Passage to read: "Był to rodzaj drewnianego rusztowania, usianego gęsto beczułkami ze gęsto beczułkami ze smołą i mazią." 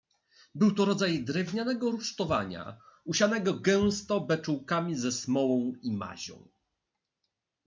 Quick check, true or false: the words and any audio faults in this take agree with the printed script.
false